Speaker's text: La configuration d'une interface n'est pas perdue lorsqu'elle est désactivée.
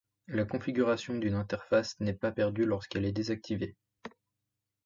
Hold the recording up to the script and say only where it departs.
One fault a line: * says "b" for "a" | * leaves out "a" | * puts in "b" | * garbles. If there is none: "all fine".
all fine